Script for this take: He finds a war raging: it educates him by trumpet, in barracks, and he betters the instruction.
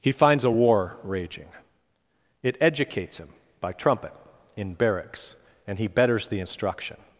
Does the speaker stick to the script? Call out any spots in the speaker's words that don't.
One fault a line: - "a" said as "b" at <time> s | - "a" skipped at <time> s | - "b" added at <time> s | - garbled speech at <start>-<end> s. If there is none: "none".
none